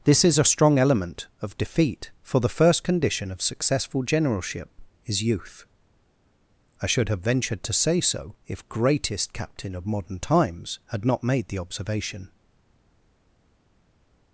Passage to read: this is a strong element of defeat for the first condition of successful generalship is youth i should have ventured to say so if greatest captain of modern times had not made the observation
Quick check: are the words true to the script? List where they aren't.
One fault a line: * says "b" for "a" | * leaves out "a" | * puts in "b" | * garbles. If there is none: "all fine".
all fine